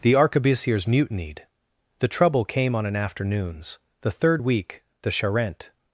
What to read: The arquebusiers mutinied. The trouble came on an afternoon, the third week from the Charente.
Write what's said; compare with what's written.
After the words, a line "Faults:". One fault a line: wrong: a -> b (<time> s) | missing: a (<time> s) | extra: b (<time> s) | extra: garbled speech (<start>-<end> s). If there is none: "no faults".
The arquebusiers mutinied. The trouble came on an afternoons, the third week the Charente.
Faults:
wrong: afternoon -> afternoons (3.0 s)
missing: from (4.8 s)